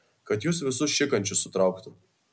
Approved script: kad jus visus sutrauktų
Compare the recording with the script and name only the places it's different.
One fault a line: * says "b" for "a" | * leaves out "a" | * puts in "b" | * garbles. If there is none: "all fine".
* puts in "šikančius"